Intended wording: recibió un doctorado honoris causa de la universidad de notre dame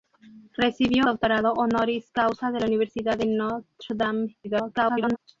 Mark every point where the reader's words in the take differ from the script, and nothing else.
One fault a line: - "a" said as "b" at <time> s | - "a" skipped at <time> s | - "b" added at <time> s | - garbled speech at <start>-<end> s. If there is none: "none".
- "un" skipped at 1.0 s
- garbled speech at 4.4-5.2 s